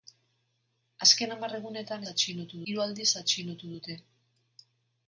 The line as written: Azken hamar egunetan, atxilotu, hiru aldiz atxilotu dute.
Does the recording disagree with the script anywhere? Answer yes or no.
no